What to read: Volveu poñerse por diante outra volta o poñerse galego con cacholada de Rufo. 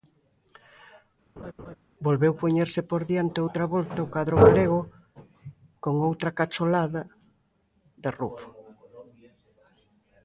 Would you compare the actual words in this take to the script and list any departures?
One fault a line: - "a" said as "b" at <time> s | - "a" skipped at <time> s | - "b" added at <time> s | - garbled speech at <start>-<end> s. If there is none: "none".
- "poñerse" said as "cadro" at 4.1 s
- "outra" added at 6.1 s